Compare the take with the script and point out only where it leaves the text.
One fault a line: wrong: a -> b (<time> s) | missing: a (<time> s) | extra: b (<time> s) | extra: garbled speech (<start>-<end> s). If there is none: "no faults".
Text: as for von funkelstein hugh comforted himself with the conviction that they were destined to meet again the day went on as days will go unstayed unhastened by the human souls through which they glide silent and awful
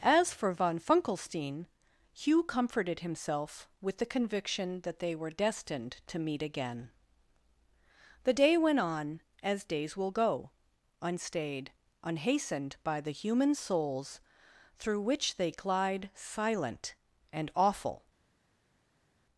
no faults